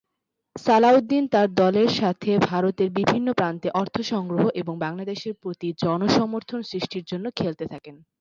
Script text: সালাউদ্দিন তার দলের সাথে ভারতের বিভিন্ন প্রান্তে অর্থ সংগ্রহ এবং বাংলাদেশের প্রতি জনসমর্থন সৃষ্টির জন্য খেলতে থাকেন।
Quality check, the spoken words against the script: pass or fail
pass